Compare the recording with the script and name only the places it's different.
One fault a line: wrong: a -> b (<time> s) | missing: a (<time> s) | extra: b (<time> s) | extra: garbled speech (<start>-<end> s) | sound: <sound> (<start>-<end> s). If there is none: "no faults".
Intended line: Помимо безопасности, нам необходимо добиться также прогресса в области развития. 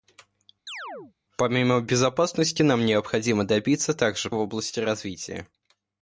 sound: chirp (0.7-1.1 s)
missing: прогресса (4.3 s)